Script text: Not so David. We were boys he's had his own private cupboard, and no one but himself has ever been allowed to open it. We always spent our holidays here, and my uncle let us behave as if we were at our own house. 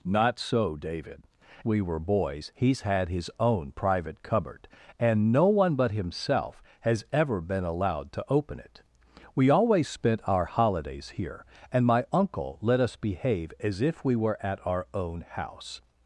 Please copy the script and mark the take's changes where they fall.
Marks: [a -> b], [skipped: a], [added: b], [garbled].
Not so David. We were boys he's had his own private cupboard, and no one but himself has ever been allowed to open it. We always spent our holidays here, and my uncle let us behave as if we were at our own house.